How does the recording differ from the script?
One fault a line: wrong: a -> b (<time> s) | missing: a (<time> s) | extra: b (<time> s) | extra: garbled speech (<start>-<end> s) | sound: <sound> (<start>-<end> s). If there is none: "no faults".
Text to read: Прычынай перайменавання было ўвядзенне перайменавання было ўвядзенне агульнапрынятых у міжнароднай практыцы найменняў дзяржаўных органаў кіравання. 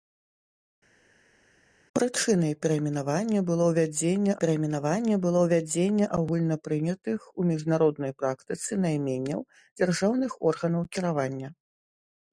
no faults